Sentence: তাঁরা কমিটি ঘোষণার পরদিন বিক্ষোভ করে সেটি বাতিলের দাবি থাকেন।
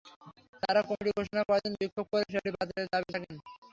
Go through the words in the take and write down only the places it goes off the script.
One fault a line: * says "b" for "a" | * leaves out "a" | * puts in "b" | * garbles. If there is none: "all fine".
all fine